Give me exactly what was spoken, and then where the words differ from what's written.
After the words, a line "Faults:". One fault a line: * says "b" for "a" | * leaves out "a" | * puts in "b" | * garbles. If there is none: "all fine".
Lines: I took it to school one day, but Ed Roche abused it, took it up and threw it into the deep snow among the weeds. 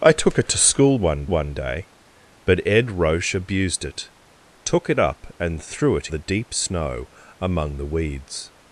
I took it to school one one day, but Ed Roche abused it, took it up and threw it the deep snow among the weeds.
Faults:
* puts in "one"
* leaves out "into"